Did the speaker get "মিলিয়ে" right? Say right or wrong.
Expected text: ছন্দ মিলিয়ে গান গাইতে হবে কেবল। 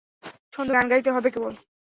wrong